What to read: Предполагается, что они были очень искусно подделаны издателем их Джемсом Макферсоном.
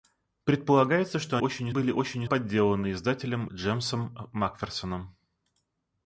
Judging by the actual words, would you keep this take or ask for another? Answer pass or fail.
fail